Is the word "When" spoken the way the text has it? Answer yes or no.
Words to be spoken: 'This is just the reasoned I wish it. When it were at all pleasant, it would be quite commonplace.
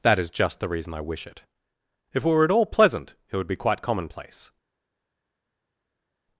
no